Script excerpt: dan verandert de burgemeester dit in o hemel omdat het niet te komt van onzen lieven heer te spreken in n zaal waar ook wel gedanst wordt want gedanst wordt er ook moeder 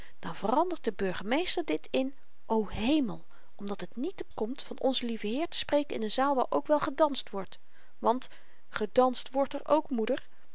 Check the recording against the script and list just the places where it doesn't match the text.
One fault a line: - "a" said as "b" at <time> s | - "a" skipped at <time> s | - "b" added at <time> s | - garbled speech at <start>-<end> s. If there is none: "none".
none